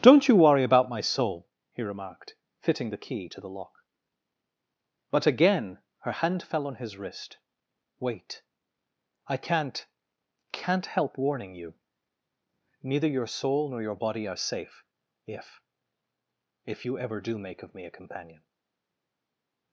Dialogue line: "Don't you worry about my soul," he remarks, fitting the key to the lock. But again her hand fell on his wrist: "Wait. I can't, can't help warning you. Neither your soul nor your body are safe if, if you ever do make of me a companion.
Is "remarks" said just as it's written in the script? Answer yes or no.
no